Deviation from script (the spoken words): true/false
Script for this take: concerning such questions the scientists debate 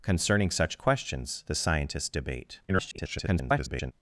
true